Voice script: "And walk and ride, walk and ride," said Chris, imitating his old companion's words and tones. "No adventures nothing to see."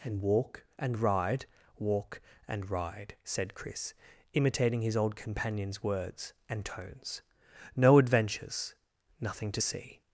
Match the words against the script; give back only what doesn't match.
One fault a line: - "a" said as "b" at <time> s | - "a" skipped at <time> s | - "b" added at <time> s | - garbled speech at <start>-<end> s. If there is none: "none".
none